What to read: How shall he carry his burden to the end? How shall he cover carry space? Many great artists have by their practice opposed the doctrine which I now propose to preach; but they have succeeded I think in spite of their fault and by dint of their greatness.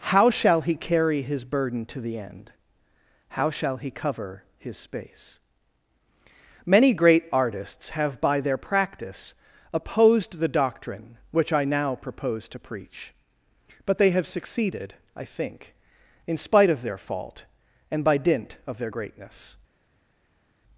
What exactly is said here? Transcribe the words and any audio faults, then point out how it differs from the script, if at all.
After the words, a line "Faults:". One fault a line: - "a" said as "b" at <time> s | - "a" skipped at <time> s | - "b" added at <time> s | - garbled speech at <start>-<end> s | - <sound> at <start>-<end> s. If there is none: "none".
How shall he carry his burden to the end? How shall he cover his space? Many great artists have by their practice opposed the doctrine which I now propose to preach; but they have succeeded I think in spite of their fault and by dint of their greatness.
Faults:
- "carry" said as "his" at 4.6 s